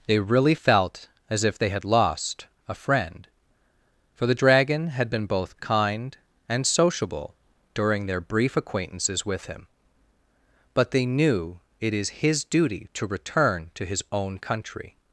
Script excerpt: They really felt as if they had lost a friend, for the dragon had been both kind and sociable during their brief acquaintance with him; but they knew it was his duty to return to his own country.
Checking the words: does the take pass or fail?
fail